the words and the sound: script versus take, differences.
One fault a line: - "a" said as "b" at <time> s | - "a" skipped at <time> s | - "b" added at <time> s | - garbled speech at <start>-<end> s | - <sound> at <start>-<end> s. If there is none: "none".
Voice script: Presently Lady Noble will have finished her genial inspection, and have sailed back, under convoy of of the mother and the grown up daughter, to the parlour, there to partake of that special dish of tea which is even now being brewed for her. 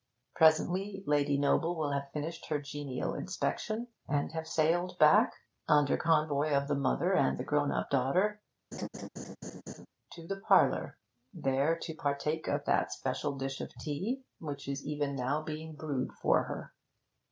- "of" skipped at 6.7 s
- laugh at 8.7-9.9 s